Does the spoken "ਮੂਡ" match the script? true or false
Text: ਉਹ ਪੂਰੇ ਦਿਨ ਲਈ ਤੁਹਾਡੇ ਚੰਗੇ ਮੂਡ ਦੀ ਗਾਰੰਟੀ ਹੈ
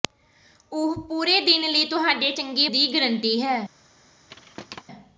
false